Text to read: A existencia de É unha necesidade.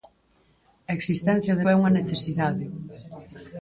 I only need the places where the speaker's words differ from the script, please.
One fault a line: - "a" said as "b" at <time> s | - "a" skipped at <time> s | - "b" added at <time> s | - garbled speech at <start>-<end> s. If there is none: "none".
none